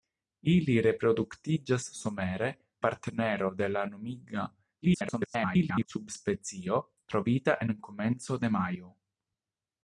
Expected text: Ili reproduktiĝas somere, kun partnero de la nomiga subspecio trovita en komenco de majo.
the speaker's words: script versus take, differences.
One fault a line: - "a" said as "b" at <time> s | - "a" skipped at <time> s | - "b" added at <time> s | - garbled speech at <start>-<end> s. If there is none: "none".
- "kun" skipped at 2.5 s
- garbled speech at 4.8-5.9 s